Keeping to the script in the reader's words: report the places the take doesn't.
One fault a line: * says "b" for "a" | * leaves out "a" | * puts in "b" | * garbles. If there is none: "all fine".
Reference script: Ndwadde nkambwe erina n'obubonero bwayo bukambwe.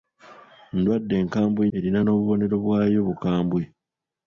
all fine